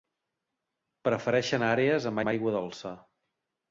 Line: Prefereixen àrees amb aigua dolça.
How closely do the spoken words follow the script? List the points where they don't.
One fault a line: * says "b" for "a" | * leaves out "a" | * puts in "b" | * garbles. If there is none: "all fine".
* puts in "amb"